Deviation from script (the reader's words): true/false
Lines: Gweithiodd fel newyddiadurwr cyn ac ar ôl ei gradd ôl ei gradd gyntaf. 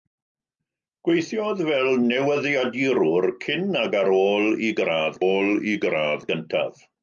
false